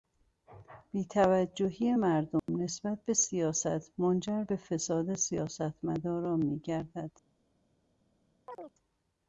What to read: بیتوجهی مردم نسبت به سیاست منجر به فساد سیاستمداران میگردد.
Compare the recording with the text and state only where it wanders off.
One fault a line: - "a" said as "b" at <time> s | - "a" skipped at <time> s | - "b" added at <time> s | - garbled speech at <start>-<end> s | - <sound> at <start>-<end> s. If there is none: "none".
- dropout at 2.4-2.5 s
- chirp at 8.5-8.7 s